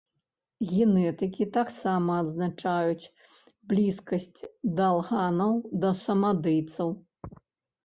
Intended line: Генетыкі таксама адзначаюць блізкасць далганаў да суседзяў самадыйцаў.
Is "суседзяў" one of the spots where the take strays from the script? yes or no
yes